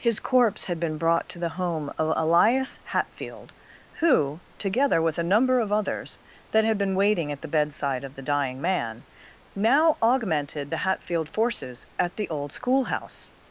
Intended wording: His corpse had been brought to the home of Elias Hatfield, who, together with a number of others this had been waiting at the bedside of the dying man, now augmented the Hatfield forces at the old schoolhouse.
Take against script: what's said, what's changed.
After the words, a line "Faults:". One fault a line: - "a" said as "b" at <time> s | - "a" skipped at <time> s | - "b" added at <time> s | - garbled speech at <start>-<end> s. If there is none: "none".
His corpse had been brought to the home of Elias Hatfield, who, together with a number of others that had been waiting at the bedside of the dying man, now augmented the Hatfield forces at the old schoolhouse.
Faults:
- "this" said as "that" at 6.5 s